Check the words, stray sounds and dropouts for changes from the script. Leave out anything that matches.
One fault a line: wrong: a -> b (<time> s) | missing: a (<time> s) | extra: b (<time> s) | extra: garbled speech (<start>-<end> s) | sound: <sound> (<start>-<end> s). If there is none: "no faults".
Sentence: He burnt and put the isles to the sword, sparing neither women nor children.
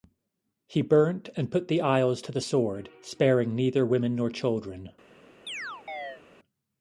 sound: chirp (5.5-6.2 s)